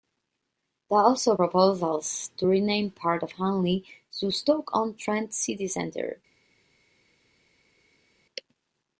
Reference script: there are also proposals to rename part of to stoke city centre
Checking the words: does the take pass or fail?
fail